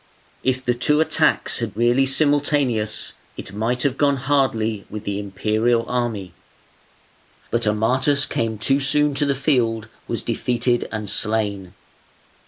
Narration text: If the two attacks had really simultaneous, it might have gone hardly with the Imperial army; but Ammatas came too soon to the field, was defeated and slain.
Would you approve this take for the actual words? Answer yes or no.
yes